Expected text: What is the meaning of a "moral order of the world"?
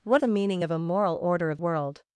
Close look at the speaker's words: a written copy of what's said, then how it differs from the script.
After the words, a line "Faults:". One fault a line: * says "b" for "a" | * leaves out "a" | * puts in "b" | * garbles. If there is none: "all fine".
What the meaning of a "moral order of world"?
Faults:
* leaves out "is"
* leaves out "the"